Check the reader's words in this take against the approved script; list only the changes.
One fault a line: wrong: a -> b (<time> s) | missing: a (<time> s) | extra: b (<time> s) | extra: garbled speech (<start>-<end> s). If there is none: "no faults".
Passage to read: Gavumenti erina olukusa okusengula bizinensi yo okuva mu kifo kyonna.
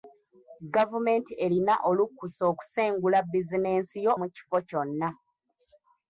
missing: okuva (4.1 s)